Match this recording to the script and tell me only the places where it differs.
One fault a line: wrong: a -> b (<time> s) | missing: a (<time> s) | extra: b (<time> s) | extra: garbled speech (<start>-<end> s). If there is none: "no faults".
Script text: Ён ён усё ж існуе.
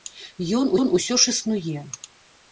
no faults